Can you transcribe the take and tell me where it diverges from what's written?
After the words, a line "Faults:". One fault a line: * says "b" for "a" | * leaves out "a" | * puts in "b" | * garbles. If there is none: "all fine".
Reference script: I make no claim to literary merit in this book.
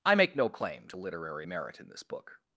I make no claim to literary merit in this book.
Faults:
all fine